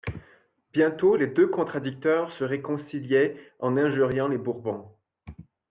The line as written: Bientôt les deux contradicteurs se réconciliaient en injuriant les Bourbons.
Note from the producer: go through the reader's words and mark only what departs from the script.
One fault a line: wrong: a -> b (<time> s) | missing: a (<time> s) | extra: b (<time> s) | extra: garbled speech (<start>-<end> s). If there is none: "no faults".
no faults